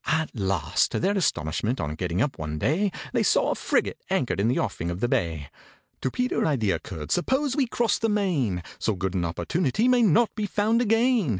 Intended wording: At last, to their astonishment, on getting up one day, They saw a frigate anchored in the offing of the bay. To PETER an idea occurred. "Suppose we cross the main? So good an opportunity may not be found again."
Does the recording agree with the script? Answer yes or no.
no